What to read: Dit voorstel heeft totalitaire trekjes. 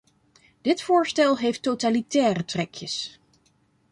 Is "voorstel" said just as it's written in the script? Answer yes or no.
yes